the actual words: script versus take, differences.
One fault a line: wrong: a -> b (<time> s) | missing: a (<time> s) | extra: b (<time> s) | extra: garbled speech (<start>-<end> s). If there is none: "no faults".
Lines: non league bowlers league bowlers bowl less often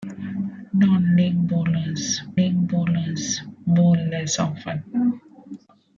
no faults